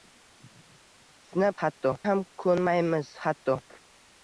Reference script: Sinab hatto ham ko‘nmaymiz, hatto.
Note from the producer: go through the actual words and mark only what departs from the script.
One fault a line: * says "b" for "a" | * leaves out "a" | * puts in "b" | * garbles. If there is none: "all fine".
all fine